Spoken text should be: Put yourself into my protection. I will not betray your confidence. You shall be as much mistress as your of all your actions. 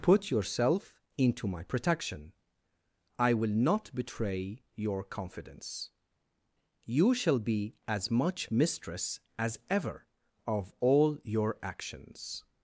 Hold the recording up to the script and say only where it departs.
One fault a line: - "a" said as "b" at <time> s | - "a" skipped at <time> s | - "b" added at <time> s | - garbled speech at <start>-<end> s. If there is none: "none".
- "your" said as "ever" at 9.7 s